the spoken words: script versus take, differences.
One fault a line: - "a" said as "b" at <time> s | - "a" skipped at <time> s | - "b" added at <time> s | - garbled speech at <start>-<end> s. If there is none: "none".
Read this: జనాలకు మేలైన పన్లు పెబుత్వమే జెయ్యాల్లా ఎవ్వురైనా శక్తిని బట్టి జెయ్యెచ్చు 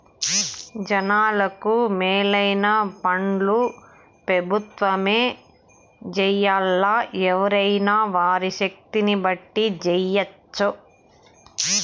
- "వారి" added at 8.2 s